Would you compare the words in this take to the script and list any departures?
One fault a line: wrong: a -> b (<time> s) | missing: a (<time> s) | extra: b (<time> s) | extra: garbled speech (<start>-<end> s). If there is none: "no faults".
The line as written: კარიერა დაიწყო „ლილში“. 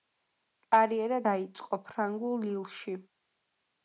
extra: ფრანგულ (1.9 s)